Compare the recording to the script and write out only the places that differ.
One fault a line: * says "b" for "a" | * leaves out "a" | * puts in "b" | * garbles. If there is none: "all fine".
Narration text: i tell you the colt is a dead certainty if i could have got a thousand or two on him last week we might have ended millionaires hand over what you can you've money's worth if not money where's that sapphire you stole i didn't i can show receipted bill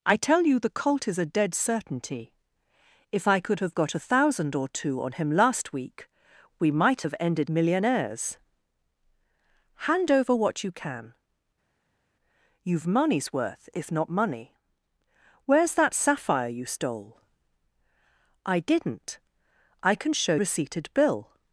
all fine